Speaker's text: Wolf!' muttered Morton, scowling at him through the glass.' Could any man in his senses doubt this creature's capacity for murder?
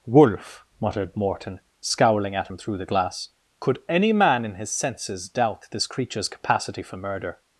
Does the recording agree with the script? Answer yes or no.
yes